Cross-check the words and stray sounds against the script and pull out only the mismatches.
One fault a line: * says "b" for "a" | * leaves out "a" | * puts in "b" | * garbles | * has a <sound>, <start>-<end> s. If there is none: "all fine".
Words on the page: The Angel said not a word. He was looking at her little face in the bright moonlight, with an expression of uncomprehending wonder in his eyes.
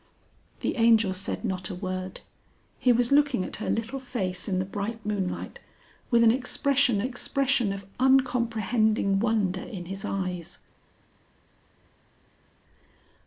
* puts in "expression"